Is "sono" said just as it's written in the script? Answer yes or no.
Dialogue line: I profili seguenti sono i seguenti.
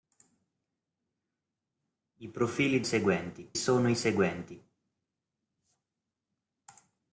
yes